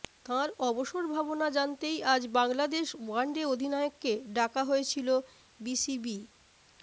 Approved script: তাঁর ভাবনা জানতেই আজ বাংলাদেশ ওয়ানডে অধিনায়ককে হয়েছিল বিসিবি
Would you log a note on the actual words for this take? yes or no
yes